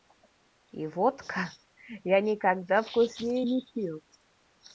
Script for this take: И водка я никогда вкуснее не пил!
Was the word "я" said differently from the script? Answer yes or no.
no